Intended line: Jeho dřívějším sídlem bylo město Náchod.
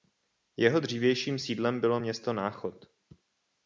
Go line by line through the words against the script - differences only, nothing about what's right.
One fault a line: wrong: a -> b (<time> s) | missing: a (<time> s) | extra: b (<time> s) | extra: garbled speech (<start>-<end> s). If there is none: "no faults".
no faults